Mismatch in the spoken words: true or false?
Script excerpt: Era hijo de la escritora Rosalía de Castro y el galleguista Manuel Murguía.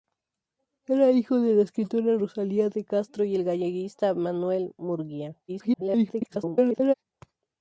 true